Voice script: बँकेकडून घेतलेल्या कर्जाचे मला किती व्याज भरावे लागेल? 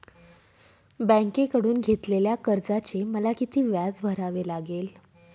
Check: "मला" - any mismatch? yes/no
no